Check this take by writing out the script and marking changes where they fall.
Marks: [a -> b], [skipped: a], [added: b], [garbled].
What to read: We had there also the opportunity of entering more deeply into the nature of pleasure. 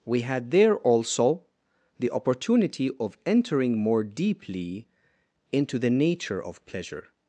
We had there also the opportunity of entering more deeply into the nature of pleasure.